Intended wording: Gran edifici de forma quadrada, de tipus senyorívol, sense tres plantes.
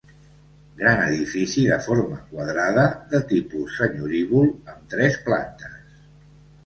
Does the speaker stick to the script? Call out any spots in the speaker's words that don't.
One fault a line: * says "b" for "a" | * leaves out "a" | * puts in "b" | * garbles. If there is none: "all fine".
* says "amb" for "sense"